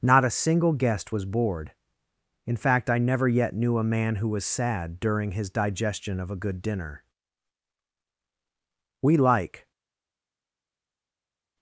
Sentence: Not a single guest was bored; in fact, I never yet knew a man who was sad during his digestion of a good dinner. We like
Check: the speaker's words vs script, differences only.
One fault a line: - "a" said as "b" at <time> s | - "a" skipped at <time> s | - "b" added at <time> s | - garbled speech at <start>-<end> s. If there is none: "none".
none